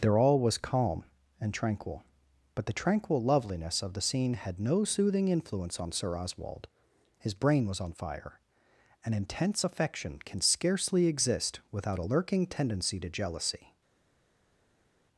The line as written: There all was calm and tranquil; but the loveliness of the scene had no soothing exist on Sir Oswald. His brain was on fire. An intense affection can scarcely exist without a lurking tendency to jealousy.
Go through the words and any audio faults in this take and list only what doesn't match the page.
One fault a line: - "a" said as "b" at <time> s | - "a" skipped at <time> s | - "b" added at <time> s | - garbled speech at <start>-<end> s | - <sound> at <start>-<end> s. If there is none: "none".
- "tranquil" added at 2.7 s
- "exist" said as "influence" at 5.3 s